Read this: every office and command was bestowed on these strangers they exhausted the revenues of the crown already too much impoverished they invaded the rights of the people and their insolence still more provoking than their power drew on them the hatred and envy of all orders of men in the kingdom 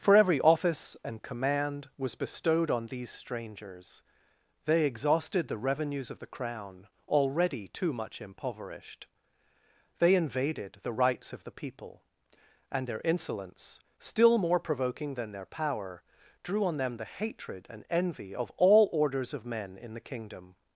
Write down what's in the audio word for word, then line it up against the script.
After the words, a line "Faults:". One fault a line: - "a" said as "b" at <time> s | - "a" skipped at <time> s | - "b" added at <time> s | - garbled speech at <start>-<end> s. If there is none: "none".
for every office and command was bestowed on these strangers they exhausted the revenues of the crown already too much impoverished they invaded the rights of the people and their insolence still more provoking than their power drew on them the hatred and envy of all orders of men in the kingdom
Faults:
- "for" added at 0.0 s